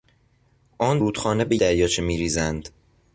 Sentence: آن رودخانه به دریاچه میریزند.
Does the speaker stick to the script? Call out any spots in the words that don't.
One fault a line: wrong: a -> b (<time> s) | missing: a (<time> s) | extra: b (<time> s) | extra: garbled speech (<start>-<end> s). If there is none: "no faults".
no faults